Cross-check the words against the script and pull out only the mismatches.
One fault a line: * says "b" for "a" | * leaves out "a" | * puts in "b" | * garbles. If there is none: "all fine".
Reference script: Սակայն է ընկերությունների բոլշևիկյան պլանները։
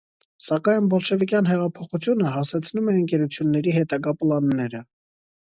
* puts in "բոլշևիկյան հեղափոխությունը հասեցնում"
* says "հետագա" for "բոլշևիկյան"